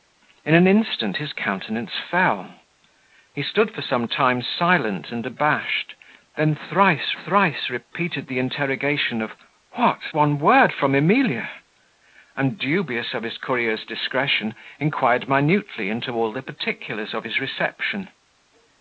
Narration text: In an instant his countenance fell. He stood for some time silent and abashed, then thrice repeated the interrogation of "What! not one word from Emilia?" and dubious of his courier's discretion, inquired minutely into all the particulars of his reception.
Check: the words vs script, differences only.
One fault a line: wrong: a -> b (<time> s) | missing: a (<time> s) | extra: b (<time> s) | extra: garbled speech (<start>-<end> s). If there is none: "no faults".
extra: thrice (7.1 s)
missing: not (10.0 s)